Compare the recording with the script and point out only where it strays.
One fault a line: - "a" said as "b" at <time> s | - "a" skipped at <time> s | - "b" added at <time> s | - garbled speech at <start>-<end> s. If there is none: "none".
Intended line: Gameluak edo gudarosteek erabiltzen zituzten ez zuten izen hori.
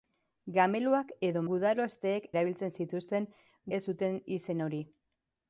none